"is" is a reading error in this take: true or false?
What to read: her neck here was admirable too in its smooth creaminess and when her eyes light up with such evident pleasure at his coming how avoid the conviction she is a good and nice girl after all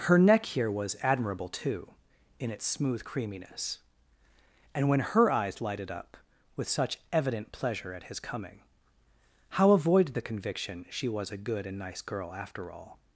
true